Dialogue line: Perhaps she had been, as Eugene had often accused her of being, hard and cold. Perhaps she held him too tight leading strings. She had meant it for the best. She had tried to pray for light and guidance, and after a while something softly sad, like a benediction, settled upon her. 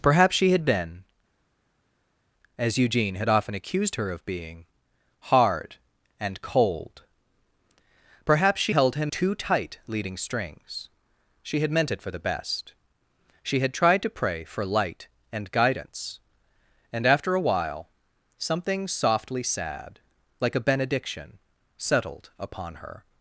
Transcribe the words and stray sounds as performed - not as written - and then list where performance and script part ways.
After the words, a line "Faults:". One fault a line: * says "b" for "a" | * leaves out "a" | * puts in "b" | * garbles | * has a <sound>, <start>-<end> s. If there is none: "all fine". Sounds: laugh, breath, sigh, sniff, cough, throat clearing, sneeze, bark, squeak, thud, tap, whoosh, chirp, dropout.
Perhaps she had been, as Eugene had often accused her of being, hard and cold. Perhaps she held him too tight leading strings. She had meant it for the best. She had tried to pray for light and guidance, and after a while something softly sad, like a benediction, settled upon her.
Faults:
all fine